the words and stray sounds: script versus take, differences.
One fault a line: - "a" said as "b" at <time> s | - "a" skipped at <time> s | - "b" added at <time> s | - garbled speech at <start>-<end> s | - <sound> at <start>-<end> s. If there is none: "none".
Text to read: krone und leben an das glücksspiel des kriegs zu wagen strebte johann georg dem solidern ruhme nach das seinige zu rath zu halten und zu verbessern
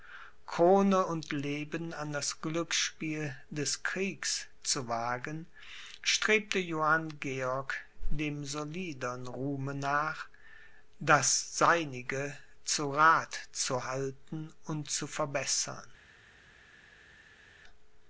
none